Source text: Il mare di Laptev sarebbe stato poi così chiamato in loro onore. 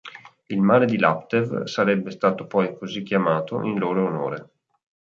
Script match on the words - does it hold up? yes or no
yes